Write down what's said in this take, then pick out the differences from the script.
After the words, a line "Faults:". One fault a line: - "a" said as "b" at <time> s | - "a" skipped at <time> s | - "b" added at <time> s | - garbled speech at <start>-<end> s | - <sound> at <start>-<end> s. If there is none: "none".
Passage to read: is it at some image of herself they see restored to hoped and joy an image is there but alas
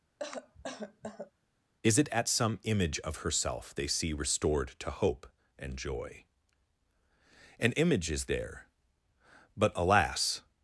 is it at some image of herself they see restored to hope and joy an image is there but alas
Faults:
- cough at 0.2-1.3 s
- "hoped" said as "hope" at 4.9 s